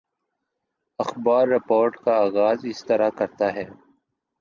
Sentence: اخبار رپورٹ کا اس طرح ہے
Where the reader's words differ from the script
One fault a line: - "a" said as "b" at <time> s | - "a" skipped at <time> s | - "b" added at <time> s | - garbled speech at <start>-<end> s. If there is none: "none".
- "آغاز" added at 2.2 s
- "کرتا" added at 3.1 s